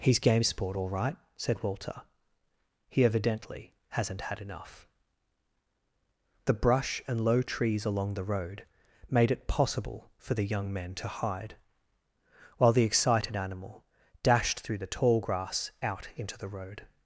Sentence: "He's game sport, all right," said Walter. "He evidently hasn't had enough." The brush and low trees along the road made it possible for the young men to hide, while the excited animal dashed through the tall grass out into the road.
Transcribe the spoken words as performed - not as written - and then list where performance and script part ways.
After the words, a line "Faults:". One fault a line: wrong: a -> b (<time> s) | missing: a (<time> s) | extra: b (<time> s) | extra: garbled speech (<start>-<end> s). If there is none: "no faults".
"He's game sport, all right," said Walter. "He evidently hasn't had enough." The brush and low trees along the road made it possible for the young men to hide, while the excited animal dashed through the tall grass out into the road.
Faults:
no faults